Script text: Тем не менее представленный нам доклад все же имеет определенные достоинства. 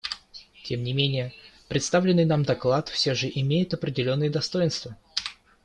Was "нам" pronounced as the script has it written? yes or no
yes